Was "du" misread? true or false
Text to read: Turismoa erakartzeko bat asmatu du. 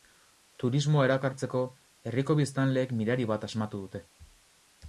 true